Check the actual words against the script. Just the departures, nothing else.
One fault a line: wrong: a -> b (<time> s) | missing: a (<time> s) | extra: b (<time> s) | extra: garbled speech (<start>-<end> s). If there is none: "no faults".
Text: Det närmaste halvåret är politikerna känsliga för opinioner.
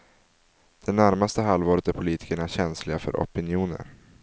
no faults